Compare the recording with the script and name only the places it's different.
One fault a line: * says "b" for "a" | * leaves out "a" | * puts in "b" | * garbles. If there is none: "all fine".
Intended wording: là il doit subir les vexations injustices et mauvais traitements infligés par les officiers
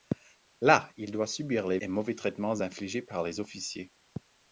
* leaves out "vexations injustices"